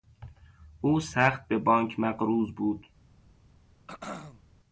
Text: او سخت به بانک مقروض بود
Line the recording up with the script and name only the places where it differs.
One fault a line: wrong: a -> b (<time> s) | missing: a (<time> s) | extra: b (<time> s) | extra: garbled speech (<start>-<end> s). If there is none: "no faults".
no faults